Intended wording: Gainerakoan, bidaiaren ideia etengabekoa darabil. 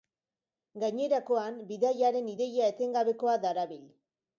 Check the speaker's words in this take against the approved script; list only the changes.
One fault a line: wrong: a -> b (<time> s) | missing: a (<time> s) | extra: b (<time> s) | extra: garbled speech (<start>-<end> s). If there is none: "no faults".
no faults